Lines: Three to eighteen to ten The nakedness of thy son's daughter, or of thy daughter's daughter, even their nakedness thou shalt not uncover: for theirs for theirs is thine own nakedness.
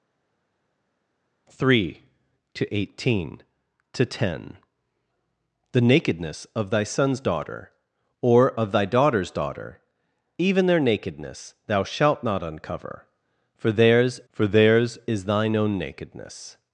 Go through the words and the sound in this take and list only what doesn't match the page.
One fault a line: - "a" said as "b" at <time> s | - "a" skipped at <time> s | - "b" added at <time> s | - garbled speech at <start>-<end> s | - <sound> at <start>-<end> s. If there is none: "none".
none